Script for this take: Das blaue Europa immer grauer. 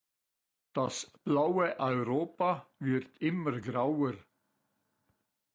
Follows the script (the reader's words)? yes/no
no